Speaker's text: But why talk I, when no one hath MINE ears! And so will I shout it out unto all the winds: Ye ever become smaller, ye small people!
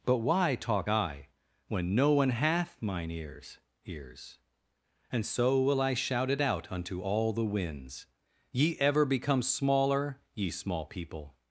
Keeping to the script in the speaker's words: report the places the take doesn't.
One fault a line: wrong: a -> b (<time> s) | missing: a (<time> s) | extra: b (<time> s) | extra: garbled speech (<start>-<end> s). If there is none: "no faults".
extra: ears (3.8 s)